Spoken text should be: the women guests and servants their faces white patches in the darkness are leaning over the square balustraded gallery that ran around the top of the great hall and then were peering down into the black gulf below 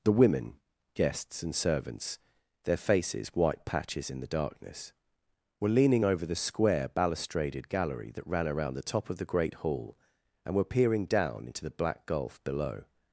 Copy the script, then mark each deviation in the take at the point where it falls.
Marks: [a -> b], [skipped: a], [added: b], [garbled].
the women guests and servants their faces white patches in the darkness [are -> were] leaning over the square balustraded gallery that ran around the top of the great hall and [skipped: then] were peering down into the black gulf below